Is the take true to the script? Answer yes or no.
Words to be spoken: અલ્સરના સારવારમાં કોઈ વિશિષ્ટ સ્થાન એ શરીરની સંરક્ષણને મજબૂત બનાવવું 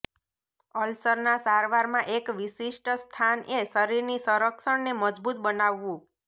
no